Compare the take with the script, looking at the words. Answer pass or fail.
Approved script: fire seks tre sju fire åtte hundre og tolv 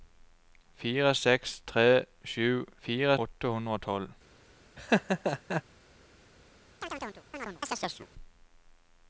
pass